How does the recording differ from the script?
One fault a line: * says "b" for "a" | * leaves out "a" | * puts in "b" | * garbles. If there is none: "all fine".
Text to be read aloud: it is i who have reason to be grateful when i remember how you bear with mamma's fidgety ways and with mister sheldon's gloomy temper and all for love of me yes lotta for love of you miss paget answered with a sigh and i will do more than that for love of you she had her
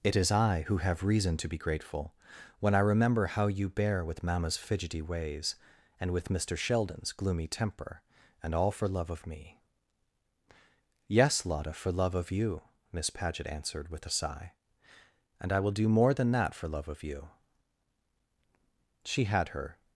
all fine